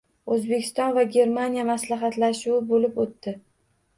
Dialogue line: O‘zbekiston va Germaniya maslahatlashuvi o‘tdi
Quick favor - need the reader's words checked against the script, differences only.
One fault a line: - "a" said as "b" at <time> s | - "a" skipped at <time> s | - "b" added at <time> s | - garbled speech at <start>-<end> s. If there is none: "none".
- "bo‘lib" added at 2.7 s